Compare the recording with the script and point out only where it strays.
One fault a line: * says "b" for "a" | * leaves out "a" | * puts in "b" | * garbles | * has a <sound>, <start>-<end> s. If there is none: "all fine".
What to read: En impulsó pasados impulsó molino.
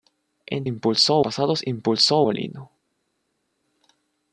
all fine